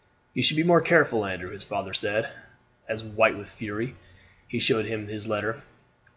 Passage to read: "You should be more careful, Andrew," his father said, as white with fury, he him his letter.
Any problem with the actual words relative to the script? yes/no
yes